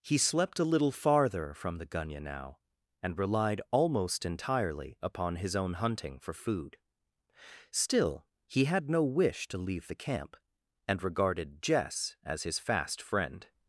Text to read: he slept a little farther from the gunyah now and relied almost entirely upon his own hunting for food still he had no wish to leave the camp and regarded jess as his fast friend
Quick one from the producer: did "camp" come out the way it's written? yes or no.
yes